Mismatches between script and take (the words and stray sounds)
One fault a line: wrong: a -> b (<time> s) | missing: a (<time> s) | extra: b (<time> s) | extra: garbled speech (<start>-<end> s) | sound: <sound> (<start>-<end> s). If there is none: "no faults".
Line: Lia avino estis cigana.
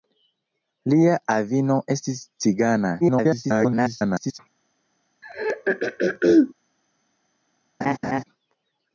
extra: garbled speech (3.0-4.4 s)
sound: throat clearing (5.2-6.5 s)
sound: laugh (7.8-8.2 s)